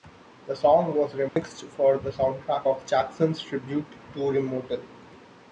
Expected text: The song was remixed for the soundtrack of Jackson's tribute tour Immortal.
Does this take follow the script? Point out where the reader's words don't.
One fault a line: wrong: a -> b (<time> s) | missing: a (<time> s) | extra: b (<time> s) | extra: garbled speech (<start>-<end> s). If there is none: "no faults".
no faults